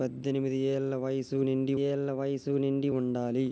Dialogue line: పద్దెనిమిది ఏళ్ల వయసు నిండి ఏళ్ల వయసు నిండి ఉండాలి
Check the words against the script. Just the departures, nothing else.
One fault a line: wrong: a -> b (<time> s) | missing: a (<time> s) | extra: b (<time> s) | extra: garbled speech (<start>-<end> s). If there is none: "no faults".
no faults